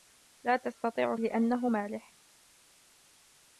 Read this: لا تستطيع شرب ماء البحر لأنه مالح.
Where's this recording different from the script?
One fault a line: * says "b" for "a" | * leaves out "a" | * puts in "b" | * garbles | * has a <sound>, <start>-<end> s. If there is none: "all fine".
* leaves out "شرب ماء البحر"